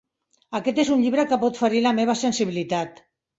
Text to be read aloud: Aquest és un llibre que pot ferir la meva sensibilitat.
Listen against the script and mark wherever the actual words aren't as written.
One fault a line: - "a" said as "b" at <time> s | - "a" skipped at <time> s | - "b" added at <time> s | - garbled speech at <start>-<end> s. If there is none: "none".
none